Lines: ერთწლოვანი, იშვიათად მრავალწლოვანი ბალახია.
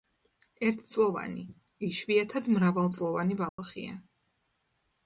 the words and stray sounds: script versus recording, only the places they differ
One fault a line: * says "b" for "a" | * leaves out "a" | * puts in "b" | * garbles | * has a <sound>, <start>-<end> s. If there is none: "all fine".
* has a dropout, 3.5-3.6 s